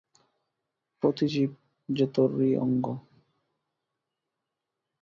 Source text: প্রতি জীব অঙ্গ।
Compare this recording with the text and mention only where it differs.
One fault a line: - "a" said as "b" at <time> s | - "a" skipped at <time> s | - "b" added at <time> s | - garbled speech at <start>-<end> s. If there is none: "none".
- "যে তোরই" added at 1.9 s